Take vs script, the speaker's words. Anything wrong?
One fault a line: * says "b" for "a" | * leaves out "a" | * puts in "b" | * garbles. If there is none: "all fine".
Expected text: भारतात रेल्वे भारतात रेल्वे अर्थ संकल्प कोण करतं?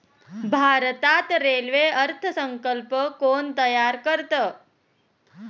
* leaves out "भारतात रेल्वे"
* puts in "तयार"